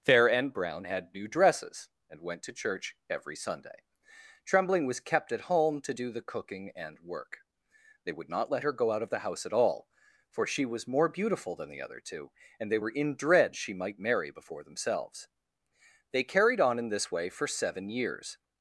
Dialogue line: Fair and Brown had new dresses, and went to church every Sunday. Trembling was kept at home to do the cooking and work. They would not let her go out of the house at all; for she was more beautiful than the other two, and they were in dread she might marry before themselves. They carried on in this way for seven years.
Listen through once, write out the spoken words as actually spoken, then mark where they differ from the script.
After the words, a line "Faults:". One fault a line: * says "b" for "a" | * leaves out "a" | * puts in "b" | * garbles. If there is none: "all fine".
Fair and Brown had new dresses, and went to church every Sunday. Trembling was kept at home to do the cooking and work. They would not let her go out of the house at all; for she was more beautiful than the other two, and they were in dread she might marry before themselves. They carried on in this way for seven years.
Faults:
all fine